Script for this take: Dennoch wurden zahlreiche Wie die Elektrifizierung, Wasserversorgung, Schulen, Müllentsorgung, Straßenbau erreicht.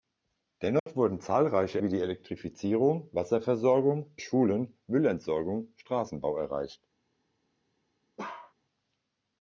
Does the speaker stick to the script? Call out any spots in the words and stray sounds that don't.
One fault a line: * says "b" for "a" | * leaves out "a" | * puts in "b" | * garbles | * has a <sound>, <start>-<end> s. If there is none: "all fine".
* has a dropout, 0.8-0.9 s
* has a bark, 8.2-8.5 s